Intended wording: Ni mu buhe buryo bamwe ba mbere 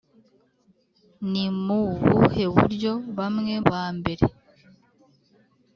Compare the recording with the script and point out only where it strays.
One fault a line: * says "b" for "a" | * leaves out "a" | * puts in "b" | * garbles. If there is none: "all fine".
all fine